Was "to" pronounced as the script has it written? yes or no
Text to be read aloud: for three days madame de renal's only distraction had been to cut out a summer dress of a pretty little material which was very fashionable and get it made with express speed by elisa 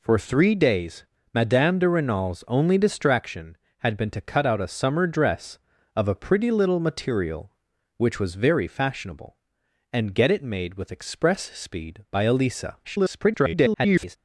yes